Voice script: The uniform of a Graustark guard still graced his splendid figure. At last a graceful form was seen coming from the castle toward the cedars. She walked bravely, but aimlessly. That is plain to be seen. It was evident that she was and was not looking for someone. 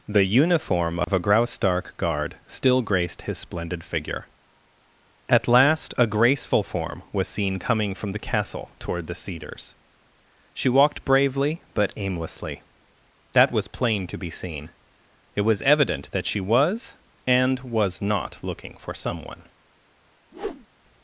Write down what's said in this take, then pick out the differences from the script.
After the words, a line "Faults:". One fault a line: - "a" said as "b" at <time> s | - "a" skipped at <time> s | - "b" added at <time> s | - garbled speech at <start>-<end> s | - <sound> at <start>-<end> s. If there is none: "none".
The uniform of a Graustark guard still graced his splendid figure. At last a graceful form was seen coming from the castle toward the cedars. She walked bravely, but aimlessly. That was plain to be seen. It was evident that she was and was not looking for someone.
Faults:
- dropout at 1.0-1.1 s
- "is" said as "was" at 13.5 s
- whoosh at 20.3-20.7 s